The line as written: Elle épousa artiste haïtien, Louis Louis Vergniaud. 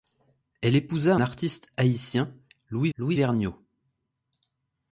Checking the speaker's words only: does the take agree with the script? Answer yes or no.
yes